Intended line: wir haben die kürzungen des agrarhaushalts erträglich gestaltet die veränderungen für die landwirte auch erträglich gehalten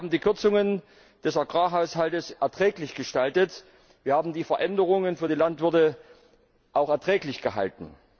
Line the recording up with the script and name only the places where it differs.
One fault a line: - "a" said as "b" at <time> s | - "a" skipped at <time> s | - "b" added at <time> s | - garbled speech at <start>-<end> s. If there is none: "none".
- "wir haben" added at 4.0 s